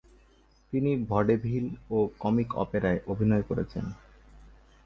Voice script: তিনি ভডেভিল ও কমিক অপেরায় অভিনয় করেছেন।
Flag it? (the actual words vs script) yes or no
no